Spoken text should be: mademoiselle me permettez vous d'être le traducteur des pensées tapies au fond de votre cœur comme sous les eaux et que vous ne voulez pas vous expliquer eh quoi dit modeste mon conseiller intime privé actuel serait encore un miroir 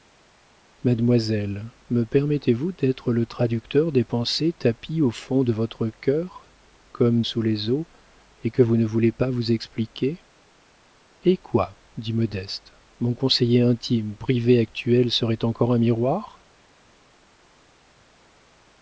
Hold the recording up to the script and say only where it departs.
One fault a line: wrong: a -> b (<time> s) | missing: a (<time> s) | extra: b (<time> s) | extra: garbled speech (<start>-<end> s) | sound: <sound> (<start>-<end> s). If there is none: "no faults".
no faults